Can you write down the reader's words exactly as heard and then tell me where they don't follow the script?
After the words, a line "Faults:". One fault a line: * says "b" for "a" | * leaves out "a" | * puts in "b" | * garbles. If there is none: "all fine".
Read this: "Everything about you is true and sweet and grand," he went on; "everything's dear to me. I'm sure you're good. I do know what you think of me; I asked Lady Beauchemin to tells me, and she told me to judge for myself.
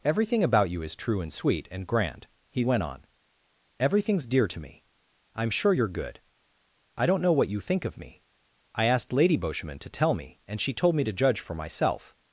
"Everything about you is true and sweet and grand," he went on; "everything's dear to me. I'm sure you're good. I don't know what you think of me; I asked Lady Beauchemin to tell me, and she told me to judge for myself.
Faults:
* says "don't" for "do"
* says "tell" for "tells"